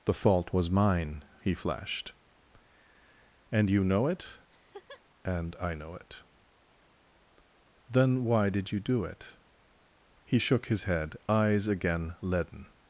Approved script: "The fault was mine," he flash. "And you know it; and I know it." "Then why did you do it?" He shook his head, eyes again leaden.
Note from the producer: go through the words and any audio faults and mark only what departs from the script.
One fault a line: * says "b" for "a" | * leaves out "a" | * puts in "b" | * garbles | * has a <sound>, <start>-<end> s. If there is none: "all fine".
* says "flashed" for "flash"
* has a laugh, 4.5-5.0 s